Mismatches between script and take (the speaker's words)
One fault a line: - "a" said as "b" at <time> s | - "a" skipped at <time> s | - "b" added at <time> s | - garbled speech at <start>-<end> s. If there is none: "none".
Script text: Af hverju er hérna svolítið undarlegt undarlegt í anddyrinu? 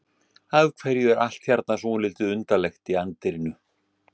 - "allt" added at 1.2 s
- "undarlegt" skipped at 2.9 s